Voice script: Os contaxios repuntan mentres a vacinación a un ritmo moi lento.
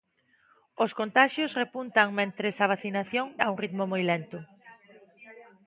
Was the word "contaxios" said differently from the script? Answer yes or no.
no